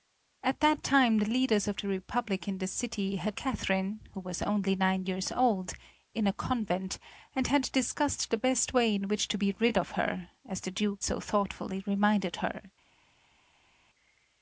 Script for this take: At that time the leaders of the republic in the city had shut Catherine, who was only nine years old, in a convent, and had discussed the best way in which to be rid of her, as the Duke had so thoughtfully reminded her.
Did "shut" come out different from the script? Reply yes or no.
yes